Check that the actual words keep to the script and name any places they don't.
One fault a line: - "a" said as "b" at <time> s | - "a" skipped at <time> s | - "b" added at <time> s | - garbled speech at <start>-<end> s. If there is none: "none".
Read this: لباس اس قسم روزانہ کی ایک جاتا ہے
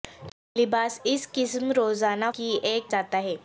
none